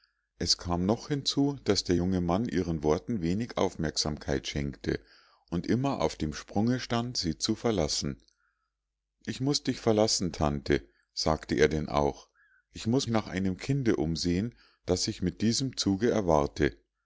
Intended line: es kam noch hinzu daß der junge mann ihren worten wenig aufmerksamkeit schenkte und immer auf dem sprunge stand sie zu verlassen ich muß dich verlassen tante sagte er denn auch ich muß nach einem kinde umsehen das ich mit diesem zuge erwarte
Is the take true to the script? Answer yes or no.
yes